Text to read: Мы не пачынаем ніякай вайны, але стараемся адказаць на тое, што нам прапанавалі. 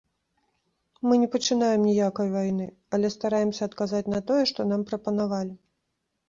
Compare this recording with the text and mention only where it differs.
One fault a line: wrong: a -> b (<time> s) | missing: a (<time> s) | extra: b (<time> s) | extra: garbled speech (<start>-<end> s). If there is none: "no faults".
no faults